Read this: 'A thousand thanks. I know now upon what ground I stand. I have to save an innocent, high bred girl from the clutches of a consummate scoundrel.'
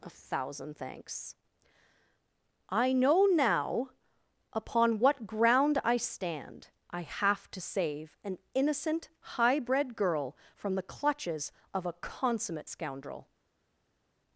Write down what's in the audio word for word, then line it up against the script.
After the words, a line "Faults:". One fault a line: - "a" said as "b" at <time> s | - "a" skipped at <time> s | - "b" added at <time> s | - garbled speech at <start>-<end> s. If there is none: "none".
'A thousand thanks. I know now upon what ground I stand. I have to save an innocent, high bred girl from the clutches of a consummate scoundrel.'
Faults:
none